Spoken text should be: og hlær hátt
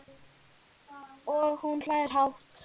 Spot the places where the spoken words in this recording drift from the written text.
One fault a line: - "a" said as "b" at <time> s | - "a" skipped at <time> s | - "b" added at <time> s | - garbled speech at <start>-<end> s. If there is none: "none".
- "hún" added at 1.6 s